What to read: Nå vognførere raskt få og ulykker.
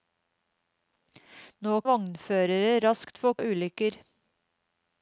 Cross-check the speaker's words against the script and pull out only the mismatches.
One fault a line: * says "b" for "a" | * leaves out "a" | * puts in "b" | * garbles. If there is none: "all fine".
all fine